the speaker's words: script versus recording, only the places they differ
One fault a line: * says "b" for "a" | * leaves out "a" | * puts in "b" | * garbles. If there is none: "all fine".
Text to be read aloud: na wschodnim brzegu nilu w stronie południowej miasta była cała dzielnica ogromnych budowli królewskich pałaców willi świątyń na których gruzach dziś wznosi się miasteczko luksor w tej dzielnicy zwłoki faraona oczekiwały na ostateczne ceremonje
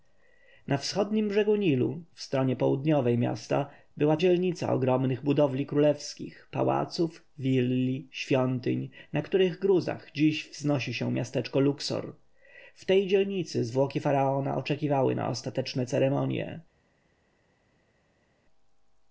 * leaves out "cała"